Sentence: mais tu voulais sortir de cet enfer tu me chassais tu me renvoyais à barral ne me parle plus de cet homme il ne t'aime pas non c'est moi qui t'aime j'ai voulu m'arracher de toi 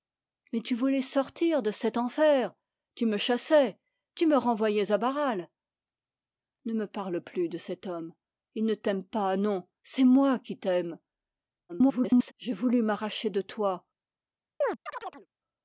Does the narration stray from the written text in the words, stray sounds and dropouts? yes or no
yes